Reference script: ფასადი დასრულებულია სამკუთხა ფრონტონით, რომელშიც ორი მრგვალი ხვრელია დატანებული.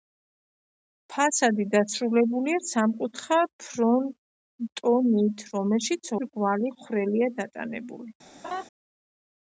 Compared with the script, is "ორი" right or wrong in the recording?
wrong